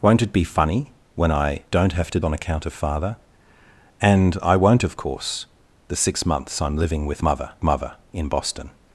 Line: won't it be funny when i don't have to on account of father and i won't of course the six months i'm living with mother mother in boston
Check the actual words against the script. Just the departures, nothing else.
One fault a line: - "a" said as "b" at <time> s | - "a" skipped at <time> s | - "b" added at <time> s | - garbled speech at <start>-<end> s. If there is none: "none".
none